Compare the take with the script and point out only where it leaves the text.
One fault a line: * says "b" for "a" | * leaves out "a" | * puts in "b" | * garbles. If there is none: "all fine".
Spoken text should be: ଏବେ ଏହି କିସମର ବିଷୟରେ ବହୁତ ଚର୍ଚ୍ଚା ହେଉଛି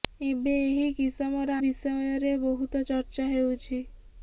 all fine